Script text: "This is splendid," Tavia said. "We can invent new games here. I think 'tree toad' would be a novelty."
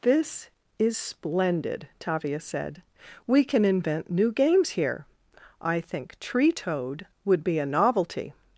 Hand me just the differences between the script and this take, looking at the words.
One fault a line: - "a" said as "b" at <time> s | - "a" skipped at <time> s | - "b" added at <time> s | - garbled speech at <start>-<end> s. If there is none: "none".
none